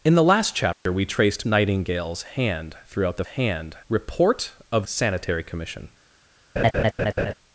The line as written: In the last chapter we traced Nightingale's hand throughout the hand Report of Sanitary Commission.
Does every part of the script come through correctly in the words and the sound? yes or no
no